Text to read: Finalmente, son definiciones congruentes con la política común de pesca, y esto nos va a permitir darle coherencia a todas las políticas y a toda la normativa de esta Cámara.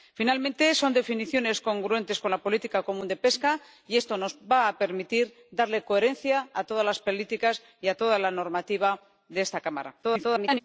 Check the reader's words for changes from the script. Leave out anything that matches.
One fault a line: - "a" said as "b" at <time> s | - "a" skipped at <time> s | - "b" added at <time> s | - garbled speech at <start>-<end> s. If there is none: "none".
- garbled speech at 10.0-10.6 s